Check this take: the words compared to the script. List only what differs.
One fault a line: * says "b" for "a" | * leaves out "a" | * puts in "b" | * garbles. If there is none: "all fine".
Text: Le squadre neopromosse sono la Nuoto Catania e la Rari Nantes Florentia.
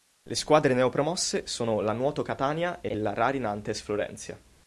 * puts in "e"